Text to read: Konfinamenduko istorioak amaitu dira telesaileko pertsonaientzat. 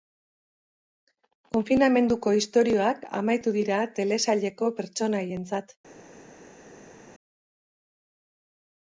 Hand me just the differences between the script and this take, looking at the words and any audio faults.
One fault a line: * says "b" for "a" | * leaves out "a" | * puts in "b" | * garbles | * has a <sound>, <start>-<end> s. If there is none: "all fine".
all fine